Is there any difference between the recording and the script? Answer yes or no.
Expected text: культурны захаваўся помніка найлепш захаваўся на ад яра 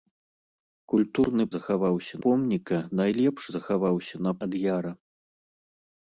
no